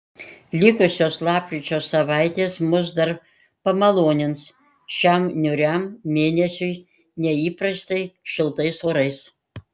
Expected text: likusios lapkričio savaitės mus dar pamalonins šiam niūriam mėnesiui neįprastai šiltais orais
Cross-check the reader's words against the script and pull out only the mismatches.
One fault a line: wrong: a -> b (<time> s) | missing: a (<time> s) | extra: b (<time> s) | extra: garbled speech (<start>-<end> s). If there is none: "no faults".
no faults